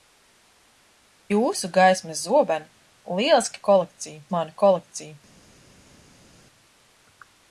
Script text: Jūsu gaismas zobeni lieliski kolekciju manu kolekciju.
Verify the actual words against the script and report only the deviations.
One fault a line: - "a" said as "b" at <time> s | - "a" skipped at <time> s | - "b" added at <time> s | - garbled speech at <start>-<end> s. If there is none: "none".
none